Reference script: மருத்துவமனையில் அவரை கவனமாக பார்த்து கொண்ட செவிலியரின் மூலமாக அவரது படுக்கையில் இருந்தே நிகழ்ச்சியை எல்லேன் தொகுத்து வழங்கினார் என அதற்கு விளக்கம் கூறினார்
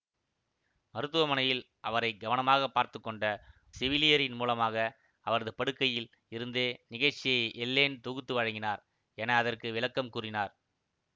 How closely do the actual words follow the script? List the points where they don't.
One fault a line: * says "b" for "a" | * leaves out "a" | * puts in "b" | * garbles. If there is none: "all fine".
all fine